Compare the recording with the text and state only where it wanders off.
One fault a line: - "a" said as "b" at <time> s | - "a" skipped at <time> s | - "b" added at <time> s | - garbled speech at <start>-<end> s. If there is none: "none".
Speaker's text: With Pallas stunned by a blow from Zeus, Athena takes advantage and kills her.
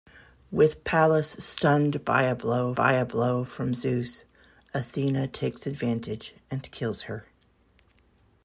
- "by a blow" added at 2.7 s